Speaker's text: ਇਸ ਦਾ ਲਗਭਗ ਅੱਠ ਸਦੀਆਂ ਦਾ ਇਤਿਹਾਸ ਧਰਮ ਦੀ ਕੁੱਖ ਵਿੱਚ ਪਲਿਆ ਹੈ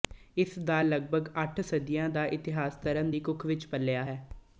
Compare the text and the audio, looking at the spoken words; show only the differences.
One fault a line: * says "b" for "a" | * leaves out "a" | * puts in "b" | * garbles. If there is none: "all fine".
all fine